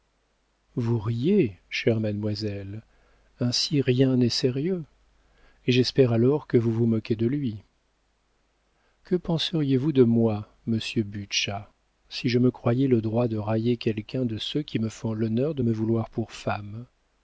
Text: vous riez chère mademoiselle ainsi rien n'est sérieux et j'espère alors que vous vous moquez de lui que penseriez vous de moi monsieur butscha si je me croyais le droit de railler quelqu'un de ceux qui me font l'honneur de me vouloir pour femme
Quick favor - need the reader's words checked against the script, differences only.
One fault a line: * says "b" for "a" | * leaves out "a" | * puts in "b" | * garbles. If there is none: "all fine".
all fine